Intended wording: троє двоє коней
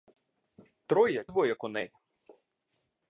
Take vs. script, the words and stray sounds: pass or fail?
pass